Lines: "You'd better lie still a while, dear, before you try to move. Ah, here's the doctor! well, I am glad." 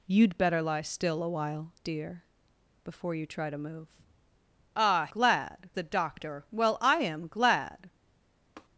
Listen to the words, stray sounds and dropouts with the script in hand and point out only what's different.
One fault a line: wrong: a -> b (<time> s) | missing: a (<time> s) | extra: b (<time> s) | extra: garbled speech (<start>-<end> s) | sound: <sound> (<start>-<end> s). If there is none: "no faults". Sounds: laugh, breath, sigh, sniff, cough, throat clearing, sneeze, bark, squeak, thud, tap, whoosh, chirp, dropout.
wrong: here's -> glad (5.1 s)
sound: tap (8.6-8.7 s)